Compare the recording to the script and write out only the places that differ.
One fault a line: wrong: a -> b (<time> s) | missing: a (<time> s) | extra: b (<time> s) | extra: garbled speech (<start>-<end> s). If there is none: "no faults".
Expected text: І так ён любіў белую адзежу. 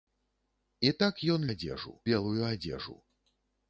wrong: любіў -> адзежу (1.5 s)